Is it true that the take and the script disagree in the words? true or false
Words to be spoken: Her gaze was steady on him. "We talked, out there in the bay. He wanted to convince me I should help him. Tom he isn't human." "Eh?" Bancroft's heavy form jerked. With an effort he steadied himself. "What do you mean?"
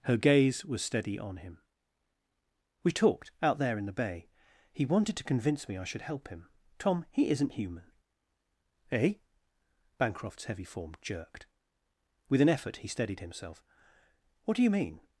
false